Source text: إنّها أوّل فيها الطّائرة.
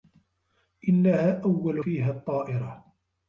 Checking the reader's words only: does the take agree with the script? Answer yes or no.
yes